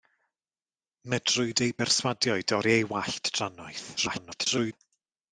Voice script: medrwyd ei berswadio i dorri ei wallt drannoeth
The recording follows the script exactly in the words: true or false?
false